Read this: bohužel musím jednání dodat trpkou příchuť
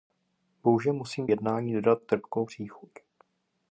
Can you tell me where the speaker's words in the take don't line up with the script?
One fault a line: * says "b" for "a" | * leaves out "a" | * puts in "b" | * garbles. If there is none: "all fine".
all fine